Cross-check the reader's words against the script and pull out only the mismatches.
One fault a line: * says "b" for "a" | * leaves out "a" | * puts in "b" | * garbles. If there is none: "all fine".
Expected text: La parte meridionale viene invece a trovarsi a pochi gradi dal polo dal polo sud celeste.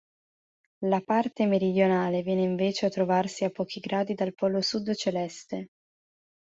* leaves out "dal polo"